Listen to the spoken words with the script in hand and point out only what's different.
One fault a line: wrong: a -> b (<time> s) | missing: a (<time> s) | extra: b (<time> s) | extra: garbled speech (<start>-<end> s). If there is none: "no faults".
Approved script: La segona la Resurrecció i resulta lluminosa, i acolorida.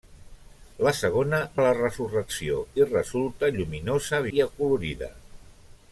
no faults